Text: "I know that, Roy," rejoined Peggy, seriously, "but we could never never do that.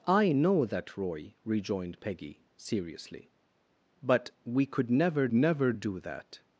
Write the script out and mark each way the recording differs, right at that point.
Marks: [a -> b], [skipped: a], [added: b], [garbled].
"I know that, Roy," rejoined Peggy, seriously, "but we could never never do that.